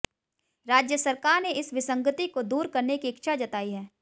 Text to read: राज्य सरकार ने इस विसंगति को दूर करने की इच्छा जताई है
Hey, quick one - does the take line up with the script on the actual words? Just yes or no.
yes